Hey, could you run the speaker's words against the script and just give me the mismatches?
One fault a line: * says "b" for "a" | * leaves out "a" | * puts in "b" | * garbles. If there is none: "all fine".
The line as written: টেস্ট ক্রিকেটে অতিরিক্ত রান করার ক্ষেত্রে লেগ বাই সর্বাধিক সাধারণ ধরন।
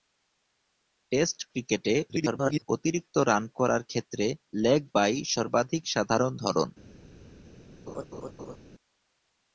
* garbles